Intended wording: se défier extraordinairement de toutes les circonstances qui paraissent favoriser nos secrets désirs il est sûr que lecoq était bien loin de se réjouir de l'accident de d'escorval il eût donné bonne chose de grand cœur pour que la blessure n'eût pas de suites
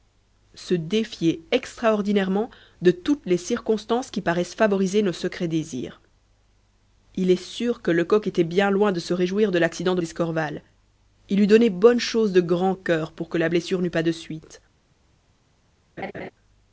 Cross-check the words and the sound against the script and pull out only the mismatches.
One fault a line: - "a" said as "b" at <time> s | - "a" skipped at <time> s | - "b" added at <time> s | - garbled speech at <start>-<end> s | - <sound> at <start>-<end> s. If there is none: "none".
- laugh at 16.0-16.3 s